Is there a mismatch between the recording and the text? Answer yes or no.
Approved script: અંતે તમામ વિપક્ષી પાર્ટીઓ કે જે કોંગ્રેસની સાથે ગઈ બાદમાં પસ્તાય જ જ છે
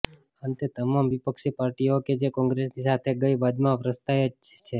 yes